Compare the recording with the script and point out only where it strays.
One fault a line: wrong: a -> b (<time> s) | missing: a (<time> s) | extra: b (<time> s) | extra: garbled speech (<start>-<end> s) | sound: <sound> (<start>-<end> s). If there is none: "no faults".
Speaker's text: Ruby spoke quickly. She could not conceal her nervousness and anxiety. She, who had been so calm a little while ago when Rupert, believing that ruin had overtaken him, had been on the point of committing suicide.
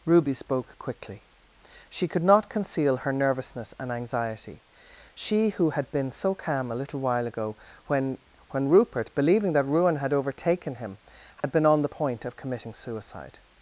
extra: when (8.5 s)
sound: dropout (11.4-11.4 s)